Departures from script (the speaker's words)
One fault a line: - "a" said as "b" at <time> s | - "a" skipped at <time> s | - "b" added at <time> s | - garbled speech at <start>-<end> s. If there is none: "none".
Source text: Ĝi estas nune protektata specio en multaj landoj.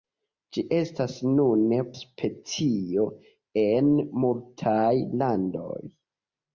- "protektata" skipped at 1.8 s